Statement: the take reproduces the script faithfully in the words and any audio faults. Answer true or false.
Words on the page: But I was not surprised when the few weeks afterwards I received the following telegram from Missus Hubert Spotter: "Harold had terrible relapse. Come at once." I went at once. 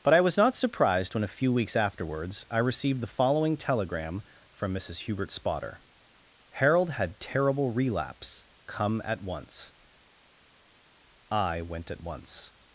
false